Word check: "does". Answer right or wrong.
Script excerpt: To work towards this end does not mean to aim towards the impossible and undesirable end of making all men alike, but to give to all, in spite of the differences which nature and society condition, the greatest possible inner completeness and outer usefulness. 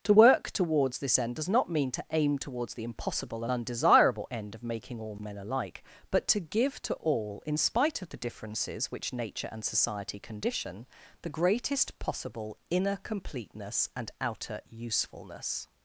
right